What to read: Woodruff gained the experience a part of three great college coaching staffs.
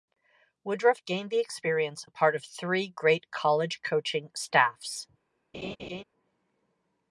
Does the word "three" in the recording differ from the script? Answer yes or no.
no